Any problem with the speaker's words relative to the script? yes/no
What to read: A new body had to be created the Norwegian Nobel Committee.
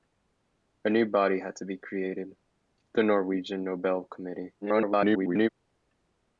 yes